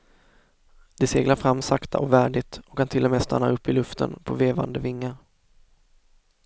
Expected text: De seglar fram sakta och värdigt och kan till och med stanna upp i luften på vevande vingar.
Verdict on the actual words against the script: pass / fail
pass